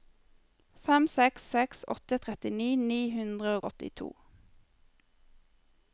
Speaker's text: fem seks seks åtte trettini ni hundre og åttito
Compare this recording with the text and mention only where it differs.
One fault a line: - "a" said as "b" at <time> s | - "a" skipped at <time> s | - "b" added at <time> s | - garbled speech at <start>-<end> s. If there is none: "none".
none